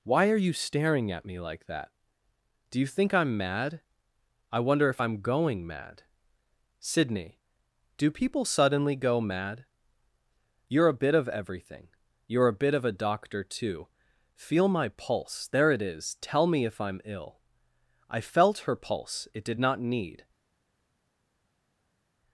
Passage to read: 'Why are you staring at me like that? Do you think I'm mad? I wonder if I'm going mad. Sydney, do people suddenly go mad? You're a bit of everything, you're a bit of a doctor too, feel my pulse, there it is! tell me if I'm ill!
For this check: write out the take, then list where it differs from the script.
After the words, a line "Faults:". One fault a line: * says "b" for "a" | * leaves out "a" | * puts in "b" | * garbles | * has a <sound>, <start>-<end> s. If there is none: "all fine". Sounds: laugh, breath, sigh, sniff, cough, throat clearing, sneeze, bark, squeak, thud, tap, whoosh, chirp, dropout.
'Why are you staring at me like that? Do you think I'm mad? I wonder if I'm going mad. Sydney, do people suddenly go mad? You're a bit of everything, you're a bit of a doctor too, feel my pulse, there it is! tell me if I'm ill! I felt her pulse, it did not need
Faults:
* puts in "I felt her pulse it did not need"